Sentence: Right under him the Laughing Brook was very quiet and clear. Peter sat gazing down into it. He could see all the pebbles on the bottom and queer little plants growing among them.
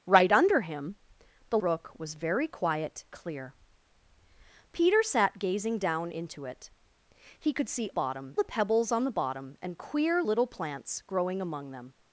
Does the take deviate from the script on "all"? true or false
true